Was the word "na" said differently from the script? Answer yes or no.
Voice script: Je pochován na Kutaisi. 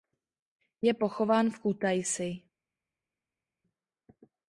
yes